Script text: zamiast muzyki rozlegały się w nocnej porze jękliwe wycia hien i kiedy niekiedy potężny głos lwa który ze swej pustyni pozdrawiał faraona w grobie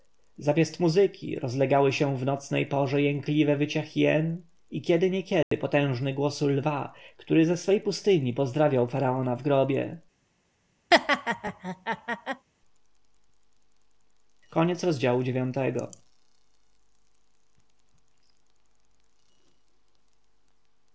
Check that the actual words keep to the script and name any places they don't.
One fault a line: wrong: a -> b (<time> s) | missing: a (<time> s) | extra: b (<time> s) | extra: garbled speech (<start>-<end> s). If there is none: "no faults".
no faults